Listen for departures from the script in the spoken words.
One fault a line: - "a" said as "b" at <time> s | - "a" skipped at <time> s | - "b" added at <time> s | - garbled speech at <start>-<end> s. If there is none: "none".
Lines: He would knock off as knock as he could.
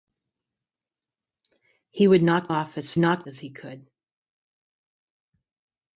none